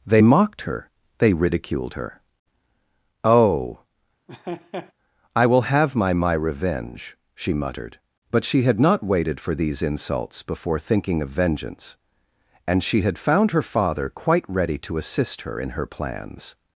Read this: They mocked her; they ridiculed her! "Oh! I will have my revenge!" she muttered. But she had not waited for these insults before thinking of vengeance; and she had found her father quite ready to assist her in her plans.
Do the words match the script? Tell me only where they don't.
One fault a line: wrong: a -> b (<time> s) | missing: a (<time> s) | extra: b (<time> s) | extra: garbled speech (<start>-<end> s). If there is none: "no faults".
extra: my (6.1 s)